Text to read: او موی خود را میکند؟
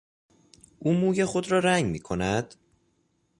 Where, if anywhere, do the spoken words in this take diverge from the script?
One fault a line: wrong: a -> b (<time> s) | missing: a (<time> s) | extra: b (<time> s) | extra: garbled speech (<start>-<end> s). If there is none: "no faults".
extra: رنگ (1.6 s)